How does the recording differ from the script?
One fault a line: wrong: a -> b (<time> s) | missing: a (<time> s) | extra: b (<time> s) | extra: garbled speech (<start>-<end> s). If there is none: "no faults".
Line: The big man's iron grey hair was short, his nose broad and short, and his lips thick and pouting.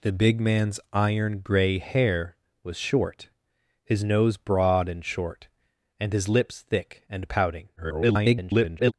extra: garbled speech (7.8-8.9 s)